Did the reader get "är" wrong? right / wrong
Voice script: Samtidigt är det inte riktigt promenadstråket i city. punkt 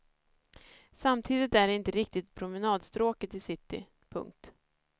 right